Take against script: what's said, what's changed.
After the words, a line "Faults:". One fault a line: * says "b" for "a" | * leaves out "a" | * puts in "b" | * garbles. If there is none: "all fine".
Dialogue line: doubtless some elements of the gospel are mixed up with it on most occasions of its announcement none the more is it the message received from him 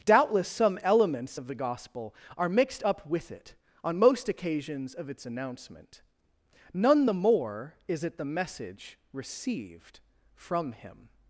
doubtless some elements of the gospel are mixed up with it on most occasions of its announcement none the more is it the message received from him
Faults:
all fine